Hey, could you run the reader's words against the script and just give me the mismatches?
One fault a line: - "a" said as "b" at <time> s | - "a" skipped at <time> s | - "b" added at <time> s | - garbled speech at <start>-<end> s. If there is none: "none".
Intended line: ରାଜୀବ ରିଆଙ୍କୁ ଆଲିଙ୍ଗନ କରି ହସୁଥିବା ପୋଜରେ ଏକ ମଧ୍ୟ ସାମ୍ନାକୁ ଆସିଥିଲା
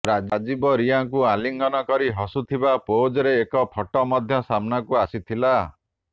- "ଫଟୋ" added at 3.7 s